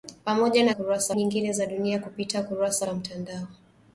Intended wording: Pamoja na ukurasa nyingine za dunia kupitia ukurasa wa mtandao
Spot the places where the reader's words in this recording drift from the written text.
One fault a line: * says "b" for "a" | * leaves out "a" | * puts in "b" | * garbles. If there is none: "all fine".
all fine